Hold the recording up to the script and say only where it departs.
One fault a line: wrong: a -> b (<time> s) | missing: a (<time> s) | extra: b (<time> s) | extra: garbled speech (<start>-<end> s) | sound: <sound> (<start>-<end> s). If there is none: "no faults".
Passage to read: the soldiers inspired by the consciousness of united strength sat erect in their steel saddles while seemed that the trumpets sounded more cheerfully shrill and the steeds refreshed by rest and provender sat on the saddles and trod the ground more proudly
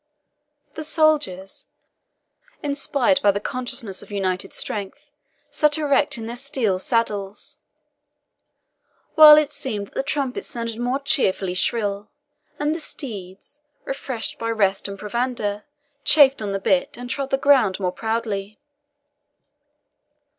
extra: it (9.4 s)
wrong: sat -> chafed (16.0 s)
wrong: saddles -> bit (16.6 s)